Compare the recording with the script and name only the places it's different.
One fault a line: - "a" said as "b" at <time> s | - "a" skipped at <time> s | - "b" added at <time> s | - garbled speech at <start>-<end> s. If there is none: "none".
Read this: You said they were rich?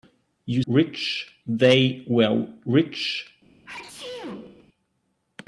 - "said" said as "rich" at 0.7 s